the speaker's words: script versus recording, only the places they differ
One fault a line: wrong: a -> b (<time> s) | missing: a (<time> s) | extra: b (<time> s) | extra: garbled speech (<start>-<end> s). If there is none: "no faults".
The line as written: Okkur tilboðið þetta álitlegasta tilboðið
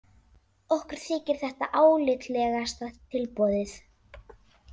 wrong: tilboðið -> þykir (1.0 s)